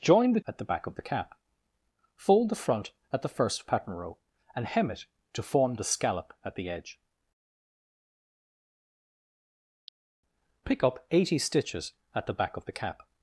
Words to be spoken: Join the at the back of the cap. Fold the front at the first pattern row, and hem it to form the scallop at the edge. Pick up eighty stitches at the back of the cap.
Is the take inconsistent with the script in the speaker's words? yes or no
no